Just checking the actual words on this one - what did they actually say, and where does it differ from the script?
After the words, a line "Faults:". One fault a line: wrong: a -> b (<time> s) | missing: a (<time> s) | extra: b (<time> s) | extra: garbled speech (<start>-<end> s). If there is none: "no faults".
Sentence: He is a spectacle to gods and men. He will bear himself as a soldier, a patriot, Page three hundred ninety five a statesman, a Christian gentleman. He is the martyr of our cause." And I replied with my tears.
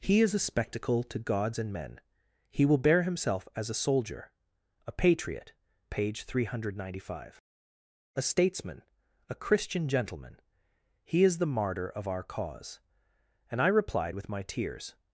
He is a spectacle to gods and men. He will bear himself as a soldier, a patriot, Page three hundred ninety five a statesman, a Christian gentleman. He is the martyr of our cause." And I replied with my tears.
Faults:
no faults